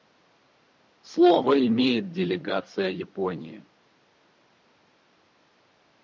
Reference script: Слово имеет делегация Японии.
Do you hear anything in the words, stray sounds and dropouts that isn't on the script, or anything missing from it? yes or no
no